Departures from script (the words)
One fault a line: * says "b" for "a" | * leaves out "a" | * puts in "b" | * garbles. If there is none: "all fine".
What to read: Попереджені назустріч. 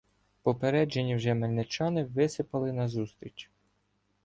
* puts in "вже мельничани висипали"